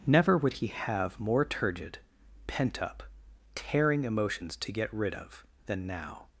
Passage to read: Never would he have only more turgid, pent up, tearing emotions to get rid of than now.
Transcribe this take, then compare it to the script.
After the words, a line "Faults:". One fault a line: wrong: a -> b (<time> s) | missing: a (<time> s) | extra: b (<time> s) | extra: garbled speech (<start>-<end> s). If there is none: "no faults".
Never would he have more turgid, pent up, tearing emotions to get rid of than now.
Faults:
missing: only (1.2 s)